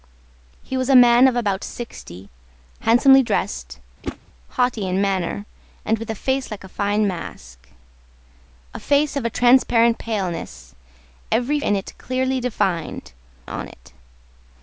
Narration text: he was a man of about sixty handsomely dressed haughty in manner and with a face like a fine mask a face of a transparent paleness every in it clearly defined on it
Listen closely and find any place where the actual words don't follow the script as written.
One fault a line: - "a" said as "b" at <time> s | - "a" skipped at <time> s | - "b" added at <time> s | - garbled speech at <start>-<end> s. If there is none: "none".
none